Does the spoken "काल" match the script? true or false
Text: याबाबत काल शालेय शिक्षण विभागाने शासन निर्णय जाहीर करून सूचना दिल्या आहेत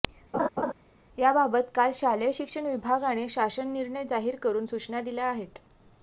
true